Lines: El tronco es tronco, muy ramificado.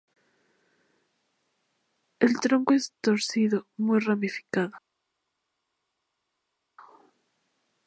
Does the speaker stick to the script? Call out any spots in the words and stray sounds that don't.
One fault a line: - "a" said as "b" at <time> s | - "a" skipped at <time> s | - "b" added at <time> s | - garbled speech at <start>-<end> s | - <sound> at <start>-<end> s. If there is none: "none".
- "tronco" said as "torcido" at 3.0 s